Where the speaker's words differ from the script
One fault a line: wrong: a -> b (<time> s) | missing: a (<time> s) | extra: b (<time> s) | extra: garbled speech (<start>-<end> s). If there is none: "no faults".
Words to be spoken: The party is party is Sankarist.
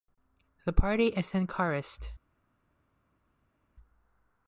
missing: party is (1.3 s)